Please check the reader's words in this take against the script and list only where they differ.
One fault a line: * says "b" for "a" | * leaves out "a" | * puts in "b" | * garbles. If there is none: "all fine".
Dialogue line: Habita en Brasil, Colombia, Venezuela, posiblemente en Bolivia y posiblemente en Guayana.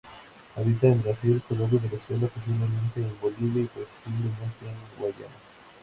all fine